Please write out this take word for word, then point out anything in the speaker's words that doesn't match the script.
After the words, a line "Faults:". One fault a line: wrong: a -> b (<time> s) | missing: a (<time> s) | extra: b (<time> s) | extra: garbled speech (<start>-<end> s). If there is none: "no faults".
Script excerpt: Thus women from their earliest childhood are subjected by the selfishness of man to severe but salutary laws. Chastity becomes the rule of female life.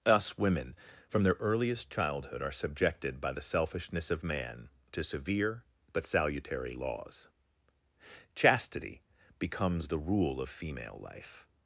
Us women from their earliest childhood are subjected by the selfishness of man to severe but salutary laws. Chastity becomes the rule of female life.
Faults:
wrong: Thus -> Us (0.1 s)